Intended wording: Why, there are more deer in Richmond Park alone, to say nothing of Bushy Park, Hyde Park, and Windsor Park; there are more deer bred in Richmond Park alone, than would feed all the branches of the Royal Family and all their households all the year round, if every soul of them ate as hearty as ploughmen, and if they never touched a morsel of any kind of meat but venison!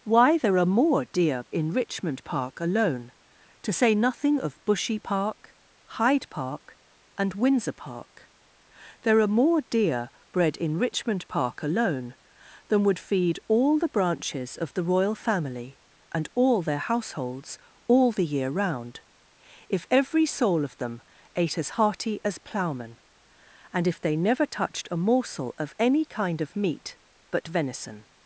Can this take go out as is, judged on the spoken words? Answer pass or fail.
pass